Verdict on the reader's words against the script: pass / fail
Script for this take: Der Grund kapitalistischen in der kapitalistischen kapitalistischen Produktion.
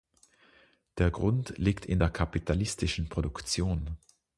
fail